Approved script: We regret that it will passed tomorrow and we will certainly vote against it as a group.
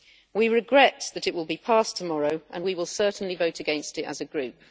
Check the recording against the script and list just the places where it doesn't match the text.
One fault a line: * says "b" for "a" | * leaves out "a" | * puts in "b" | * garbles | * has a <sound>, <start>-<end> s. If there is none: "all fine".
* puts in "be"